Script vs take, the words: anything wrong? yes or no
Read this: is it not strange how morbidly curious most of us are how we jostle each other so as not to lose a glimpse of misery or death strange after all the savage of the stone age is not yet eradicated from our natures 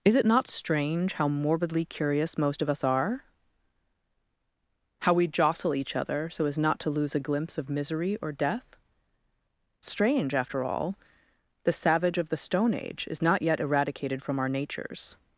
no